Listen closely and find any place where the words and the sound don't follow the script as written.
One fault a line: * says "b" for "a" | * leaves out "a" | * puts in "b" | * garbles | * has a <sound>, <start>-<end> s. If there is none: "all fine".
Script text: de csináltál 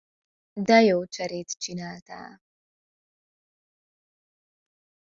* puts in "jó cserét"